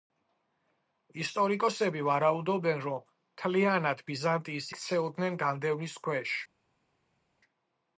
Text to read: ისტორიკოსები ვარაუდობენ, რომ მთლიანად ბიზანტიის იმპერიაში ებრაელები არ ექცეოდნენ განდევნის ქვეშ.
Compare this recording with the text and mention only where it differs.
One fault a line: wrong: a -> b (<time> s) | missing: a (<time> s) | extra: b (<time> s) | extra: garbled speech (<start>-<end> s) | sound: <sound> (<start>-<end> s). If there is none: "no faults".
missing: იმპერიაში ებრაელები არ (4.7 s)